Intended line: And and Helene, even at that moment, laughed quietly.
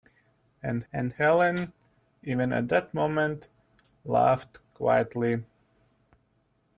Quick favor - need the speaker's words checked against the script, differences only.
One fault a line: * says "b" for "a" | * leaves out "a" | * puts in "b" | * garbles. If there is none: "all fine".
all fine